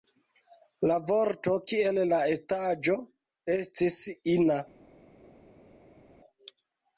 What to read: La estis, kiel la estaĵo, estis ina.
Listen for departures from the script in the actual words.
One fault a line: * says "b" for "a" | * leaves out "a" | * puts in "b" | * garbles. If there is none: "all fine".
* says "vorto" for "estis"